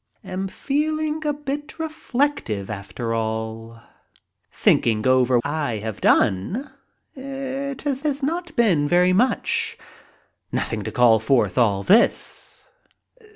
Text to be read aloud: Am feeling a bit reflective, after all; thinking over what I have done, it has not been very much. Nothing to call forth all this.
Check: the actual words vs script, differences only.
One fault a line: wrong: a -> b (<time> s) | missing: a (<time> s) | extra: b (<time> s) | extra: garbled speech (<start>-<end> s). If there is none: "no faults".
missing: what (5.4 s)
extra: has (8.0 s)